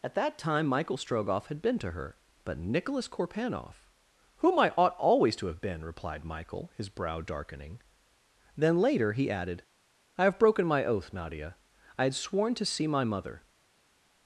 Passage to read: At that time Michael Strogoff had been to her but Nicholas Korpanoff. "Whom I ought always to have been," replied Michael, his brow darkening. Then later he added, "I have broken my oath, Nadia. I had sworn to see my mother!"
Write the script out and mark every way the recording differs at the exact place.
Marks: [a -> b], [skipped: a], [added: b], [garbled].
At that time Michael Strogoff had been to her but Nicholas Korpanoff. "Whom I ought always to have been," replied Michael, his brow darkening. Then later he added, "I have broken my oath, Nadia. I had sworn to see my mother!"